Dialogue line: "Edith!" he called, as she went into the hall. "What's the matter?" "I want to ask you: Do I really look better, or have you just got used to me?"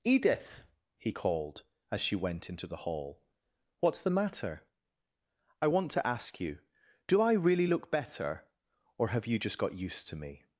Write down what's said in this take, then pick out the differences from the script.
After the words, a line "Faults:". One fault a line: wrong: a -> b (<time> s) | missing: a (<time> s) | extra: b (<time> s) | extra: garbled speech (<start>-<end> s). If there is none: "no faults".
"Edith!" he called, as she went into the hall. "What's the matter?" "I want to ask you: Do I really look better, or have you just got used to me?"
Faults:
no faults